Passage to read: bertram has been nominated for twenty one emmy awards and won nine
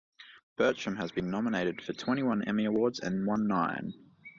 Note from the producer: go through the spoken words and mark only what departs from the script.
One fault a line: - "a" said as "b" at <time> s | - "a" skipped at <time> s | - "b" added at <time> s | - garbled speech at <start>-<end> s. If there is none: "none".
none